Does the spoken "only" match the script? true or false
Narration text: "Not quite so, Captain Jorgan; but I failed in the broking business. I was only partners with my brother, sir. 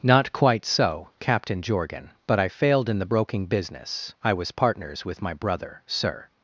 false